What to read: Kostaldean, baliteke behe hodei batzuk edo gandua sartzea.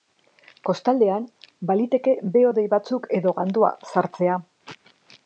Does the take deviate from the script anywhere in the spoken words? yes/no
no